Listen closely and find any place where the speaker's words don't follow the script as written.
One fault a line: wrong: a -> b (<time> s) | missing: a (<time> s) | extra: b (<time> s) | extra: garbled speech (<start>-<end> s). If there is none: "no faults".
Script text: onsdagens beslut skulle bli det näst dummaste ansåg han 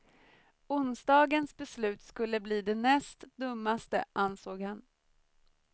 no faults